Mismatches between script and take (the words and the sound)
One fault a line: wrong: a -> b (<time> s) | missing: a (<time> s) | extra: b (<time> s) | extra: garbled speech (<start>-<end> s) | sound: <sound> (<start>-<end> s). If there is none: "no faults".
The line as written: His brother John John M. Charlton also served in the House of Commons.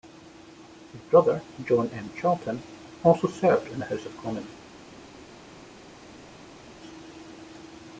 missing: John (1.9 s)